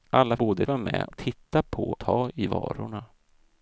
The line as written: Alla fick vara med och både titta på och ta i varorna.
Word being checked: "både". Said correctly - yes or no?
no